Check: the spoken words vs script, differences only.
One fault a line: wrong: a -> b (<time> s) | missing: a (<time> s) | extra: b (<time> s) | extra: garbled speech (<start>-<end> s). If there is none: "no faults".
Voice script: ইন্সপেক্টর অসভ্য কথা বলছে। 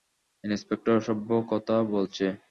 no faults